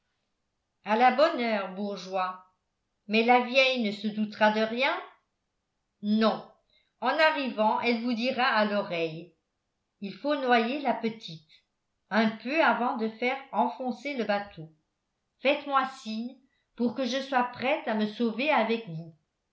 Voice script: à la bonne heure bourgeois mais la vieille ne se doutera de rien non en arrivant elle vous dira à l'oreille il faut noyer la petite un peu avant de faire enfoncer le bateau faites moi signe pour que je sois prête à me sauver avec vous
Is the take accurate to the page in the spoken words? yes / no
yes